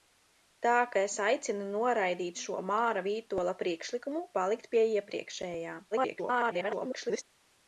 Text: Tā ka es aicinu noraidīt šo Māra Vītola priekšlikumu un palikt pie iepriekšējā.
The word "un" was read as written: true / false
false